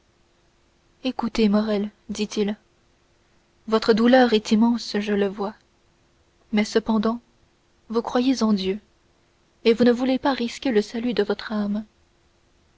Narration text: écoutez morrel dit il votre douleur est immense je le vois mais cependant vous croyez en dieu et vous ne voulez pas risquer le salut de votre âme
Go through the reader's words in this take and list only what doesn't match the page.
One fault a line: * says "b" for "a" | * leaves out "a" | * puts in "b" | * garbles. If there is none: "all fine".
all fine